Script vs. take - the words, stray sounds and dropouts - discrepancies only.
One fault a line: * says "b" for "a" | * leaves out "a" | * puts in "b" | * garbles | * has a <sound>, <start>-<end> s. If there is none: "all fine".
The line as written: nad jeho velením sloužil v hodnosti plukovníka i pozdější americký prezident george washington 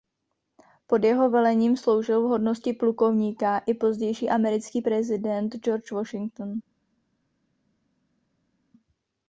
* says "pod" for "nad"